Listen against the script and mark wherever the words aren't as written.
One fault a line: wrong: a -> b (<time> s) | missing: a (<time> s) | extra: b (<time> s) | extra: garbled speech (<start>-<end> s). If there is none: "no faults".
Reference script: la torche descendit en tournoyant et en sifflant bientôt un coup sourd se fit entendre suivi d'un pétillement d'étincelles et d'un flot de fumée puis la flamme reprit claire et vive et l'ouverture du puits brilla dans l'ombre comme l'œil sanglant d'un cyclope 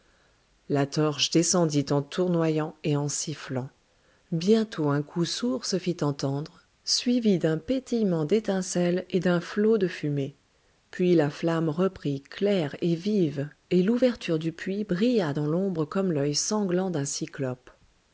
no faults